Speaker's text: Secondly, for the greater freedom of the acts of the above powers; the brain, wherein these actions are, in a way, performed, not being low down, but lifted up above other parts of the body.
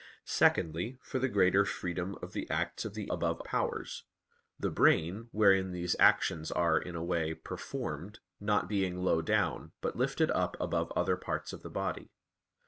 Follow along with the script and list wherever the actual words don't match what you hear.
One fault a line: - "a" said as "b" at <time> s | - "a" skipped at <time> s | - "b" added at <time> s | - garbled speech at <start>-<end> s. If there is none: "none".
none